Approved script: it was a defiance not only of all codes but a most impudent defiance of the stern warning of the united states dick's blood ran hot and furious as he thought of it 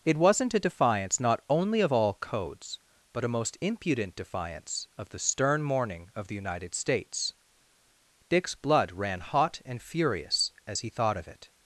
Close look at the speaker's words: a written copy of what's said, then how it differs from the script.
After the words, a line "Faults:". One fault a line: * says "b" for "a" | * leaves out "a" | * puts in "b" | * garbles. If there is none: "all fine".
it wasn't a defiance not only of all codes but a most impudent defiance of the stern morning of the united states dick's blood ran hot and furious as he thought of it
Faults:
* says "wasn't" for "was"
* says "morning" for "warning"